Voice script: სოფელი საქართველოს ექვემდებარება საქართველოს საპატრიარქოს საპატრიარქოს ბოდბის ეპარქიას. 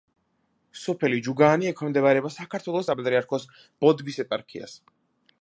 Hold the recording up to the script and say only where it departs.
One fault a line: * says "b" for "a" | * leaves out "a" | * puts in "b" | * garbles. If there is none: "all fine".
* says "ჯუგაანი" for "საქართველოს"
* leaves out "საპატრიარქოს"